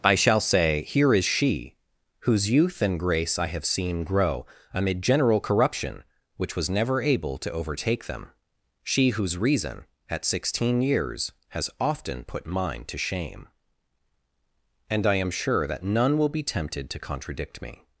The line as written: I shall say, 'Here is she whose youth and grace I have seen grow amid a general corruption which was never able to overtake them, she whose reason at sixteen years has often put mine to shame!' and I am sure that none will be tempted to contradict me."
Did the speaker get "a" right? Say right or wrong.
wrong